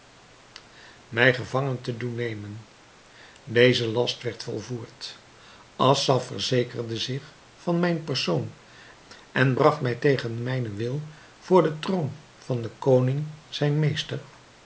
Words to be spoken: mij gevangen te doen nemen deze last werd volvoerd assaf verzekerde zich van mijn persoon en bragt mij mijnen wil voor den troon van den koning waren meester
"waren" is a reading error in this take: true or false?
true